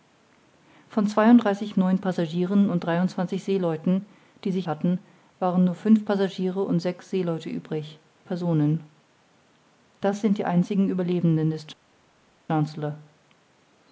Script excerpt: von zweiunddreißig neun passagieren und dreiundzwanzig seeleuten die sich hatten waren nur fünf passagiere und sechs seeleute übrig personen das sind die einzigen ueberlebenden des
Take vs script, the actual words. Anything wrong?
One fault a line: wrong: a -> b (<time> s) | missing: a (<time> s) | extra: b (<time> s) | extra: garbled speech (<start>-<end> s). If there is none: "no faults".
no faults